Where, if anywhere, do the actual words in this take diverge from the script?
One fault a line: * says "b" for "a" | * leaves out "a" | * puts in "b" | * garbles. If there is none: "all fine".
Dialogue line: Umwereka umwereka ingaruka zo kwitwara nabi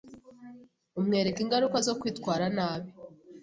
* leaves out "umwereka"